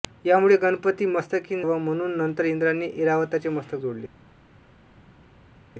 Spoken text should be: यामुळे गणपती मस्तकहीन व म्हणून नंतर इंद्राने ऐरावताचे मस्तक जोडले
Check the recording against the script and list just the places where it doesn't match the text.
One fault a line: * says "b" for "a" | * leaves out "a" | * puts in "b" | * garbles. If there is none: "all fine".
all fine